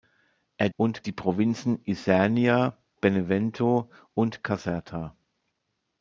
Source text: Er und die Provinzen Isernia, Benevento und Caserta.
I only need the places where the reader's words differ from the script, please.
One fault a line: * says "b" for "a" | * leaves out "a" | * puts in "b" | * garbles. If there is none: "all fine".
all fine